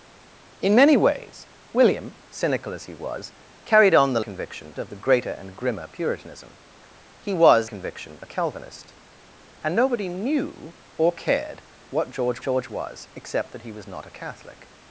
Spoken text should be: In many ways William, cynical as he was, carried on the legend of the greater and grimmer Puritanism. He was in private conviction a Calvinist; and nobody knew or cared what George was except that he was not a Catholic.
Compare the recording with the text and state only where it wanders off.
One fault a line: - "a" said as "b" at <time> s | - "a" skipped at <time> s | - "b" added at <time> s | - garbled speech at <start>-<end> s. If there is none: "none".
- "legend" said as "conviction" at 4.2 s
- "in private" skipped at 7.7 s
- "George" added at 12.4 s